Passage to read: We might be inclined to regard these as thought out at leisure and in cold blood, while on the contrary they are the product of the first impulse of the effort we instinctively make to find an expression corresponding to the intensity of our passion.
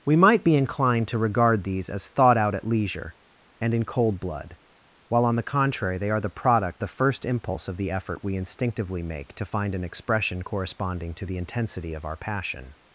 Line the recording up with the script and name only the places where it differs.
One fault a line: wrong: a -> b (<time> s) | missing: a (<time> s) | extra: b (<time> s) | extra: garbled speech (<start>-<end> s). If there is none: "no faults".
missing: of (6.8 s)